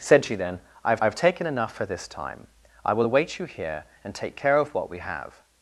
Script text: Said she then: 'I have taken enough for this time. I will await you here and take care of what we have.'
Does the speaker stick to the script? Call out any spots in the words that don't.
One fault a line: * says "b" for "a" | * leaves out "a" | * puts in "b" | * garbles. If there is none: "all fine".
* puts in "have"